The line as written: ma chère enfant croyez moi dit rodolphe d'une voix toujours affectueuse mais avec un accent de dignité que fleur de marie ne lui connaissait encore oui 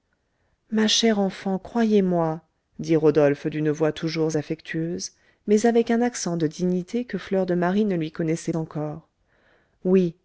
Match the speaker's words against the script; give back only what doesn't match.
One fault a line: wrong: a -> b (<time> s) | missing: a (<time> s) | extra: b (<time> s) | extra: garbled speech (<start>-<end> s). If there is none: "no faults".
no faults